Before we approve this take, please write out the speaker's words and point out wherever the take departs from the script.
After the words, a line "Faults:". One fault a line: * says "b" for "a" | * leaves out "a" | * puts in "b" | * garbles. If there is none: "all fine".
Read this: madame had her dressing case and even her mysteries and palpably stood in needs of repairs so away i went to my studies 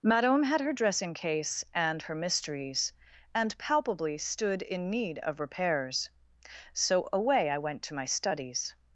madame had her dressing case and her mysteries and palpably stood in need of repairs so away i went to my studies
Faults:
* leaves out "even"
* says "need" for "needs"